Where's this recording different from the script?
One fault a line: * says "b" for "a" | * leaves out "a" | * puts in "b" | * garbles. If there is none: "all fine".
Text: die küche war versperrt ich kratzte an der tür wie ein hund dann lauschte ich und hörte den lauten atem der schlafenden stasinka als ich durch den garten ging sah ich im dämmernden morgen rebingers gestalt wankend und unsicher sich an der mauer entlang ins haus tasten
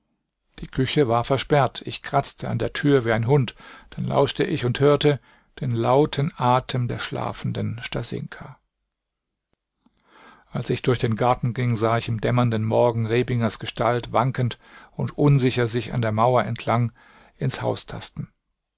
all fine